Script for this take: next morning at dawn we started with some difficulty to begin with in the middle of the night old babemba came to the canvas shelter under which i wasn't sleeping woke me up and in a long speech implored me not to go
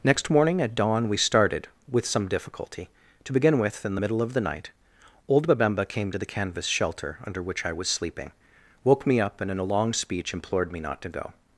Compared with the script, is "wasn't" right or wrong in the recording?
wrong